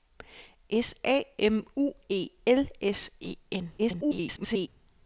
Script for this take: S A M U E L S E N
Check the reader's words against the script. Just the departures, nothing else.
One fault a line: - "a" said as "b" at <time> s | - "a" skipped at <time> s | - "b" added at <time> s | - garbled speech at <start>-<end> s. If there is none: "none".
- garbled speech at 3.8-4.7 s